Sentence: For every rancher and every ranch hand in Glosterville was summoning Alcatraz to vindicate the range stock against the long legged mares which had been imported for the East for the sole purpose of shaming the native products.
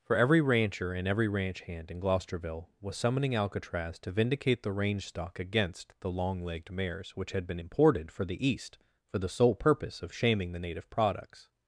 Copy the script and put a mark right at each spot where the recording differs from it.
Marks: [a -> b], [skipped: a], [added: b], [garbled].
For every rancher and every ranch hand in Glosterville was summoning Alcatraz to vindicate the range stock against the long legged mares which had been imported for the East for the sole purpose of shaming the native products.